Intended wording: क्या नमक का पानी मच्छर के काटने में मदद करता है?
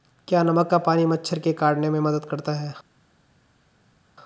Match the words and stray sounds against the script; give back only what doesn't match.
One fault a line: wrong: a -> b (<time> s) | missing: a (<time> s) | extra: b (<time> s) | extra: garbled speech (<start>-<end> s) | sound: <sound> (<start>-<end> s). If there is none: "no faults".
no faults